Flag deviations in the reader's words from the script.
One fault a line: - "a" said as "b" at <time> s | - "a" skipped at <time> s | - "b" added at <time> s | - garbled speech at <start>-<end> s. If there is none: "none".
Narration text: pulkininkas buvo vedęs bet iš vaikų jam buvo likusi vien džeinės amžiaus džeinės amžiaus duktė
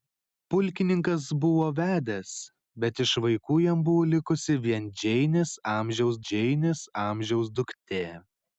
none